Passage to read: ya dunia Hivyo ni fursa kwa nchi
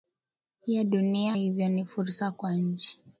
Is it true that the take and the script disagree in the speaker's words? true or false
false